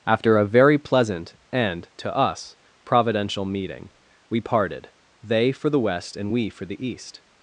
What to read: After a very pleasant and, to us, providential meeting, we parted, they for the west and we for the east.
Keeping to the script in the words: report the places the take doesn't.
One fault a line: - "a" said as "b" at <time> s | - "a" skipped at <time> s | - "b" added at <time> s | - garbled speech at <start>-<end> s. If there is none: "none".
none